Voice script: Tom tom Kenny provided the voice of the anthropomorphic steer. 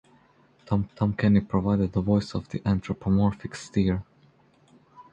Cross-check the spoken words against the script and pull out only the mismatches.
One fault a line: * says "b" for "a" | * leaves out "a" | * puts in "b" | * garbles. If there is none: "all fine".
all fine